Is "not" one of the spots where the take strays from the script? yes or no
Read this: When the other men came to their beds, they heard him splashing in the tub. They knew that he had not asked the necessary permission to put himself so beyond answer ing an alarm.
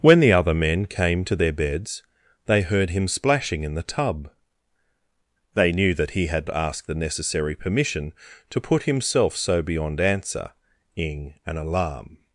yes